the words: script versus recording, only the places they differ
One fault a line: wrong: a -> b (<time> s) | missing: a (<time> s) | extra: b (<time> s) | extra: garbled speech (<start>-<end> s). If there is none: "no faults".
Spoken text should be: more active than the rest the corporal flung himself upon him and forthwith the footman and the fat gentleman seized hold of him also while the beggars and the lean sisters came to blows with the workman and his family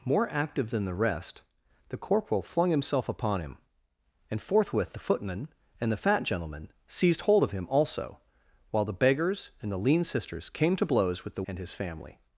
missing: workman (11.4 s)